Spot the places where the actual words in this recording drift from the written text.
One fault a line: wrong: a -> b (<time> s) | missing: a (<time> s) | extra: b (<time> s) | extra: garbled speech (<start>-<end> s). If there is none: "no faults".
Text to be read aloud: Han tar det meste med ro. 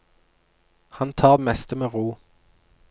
missing: det (1.4 s)